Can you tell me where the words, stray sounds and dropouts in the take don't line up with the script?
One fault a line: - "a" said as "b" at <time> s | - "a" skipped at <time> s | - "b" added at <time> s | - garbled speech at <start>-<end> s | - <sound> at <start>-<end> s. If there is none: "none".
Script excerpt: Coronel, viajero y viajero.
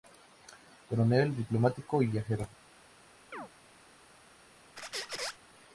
- "viajero" said as "diplomático" at 1.4 s
- chirp at 3.3-3.5 s
- squeak at 4.8-5.4 s